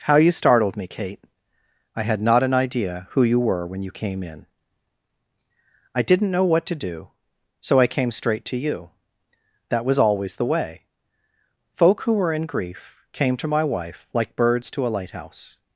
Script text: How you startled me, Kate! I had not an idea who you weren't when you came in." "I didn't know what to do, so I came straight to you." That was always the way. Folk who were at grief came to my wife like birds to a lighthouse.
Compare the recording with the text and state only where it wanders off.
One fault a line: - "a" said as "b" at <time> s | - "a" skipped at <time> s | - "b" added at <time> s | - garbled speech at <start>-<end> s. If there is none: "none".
- "weren't" said as "were" at 3.4 s
- "at" said as "in" at 12.3 s